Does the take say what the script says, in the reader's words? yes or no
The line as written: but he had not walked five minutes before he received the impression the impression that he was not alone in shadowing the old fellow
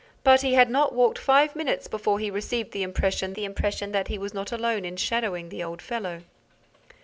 yes